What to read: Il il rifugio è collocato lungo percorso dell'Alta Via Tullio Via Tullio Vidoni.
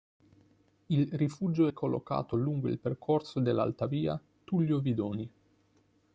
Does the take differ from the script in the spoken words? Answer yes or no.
yes